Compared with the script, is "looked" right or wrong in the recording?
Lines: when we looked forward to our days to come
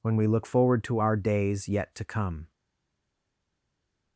wrong